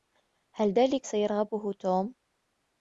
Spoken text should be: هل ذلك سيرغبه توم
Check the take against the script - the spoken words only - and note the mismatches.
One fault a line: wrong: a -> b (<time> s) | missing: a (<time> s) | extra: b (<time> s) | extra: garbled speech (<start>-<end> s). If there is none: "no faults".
no faults